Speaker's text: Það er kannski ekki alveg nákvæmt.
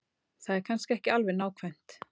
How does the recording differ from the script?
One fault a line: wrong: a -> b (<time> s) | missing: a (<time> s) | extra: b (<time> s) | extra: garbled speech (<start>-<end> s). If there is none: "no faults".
no faults